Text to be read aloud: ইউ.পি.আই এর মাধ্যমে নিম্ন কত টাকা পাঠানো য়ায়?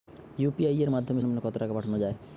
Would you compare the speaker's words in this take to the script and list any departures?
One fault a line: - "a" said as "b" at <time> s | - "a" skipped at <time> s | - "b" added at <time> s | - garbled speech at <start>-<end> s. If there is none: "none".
none